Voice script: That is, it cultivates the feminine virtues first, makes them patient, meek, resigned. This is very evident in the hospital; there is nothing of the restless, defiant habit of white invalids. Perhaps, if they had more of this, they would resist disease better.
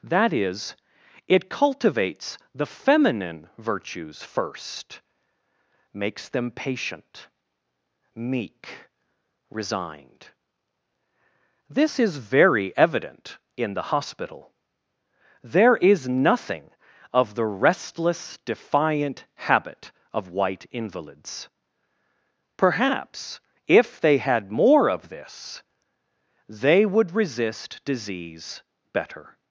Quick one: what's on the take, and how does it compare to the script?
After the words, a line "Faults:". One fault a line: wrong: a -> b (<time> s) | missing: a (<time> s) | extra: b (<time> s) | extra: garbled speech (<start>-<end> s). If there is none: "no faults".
That is, it cultivates the feminine virtues first, makes them patient, meek, resigned. This is very evident in the hospital; there is nothing of the restless, defiant habit of white invalids. Perhaps, if they had more of this, they would resist disease better.
Faults:
no faults